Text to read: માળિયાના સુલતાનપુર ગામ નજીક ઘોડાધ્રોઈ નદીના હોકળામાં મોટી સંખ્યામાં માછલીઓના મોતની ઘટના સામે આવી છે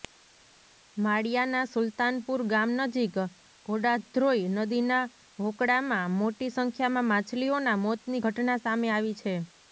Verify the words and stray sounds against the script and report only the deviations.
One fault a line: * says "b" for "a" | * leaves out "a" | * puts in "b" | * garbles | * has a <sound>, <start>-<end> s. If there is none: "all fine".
all fine